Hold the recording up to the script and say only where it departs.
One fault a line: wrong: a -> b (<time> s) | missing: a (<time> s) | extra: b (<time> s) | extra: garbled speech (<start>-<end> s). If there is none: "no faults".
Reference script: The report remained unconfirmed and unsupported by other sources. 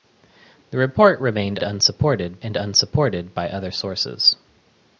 wrong: unconfirmed -> unsupported (1.6 s)